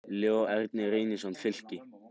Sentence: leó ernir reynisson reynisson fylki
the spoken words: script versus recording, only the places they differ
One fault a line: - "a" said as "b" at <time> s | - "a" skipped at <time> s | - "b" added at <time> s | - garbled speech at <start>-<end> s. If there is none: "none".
- "reynisson" skipped at 1.3 s